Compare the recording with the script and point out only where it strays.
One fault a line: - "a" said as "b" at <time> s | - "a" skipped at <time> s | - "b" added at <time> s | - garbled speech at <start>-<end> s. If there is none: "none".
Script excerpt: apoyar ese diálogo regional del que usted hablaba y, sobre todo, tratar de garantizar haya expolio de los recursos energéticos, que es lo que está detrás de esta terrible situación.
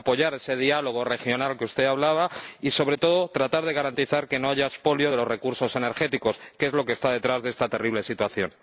- "que no" added at 4.3 s